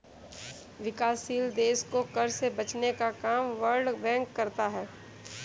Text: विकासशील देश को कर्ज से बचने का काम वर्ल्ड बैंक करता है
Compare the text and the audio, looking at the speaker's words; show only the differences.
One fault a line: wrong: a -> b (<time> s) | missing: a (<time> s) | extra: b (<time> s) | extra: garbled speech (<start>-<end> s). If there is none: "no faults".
no faults